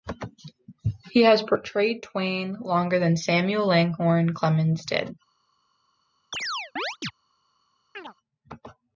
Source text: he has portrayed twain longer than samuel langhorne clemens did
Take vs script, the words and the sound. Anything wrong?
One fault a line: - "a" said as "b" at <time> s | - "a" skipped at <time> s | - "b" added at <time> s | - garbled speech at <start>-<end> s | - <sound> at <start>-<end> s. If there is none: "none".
- chirp at 6.3-7.1 s
- chirp at 7.9-8.1 s